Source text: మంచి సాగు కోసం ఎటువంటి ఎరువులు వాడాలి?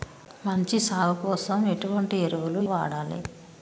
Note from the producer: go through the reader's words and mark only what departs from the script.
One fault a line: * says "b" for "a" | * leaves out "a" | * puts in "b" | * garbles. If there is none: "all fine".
all fine